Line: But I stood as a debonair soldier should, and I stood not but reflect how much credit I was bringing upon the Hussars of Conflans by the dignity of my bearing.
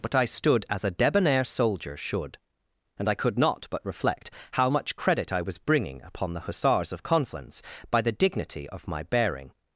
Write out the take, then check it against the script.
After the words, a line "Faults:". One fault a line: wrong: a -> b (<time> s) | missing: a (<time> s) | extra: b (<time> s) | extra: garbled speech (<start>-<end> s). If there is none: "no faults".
But I stood as a debonair soldier should, and I could not but reflect how much credit I was bringing upon the Hussars of Conflans by the dignity of my bearing.
Faults:
wrong: stood -> could (3.1 s)